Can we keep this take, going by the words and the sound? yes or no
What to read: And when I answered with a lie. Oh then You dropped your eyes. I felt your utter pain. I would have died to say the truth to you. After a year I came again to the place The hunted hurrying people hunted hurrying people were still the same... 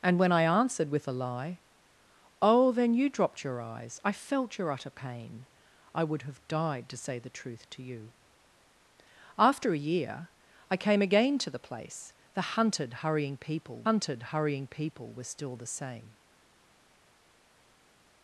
yes